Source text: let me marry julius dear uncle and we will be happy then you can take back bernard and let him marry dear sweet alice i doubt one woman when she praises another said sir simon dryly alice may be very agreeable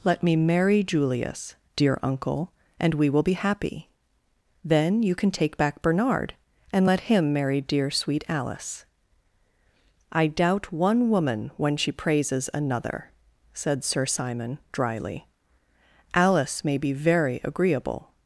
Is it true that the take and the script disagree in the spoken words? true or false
false